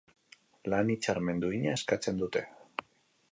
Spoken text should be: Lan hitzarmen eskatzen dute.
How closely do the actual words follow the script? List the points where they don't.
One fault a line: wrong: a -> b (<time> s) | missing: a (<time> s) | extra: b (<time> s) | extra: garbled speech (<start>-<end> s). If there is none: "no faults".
extra: duina (1.4 s)